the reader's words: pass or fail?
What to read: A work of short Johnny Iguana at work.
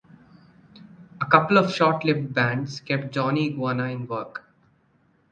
fail